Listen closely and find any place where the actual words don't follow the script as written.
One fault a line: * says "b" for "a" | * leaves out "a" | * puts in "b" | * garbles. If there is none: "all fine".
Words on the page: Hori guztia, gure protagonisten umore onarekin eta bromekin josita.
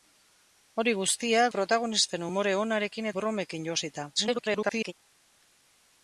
* leaves out "gure"
* leaves out "eta"
* garbles